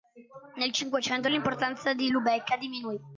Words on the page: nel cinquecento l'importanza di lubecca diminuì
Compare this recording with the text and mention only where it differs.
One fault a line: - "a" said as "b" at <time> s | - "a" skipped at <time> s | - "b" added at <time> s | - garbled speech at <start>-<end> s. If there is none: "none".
none